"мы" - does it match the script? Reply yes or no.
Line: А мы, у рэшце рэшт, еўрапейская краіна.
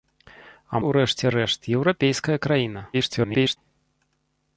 no